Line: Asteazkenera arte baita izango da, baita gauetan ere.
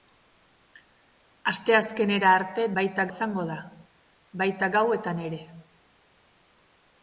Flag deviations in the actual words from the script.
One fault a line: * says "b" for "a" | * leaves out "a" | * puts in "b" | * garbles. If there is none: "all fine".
all fine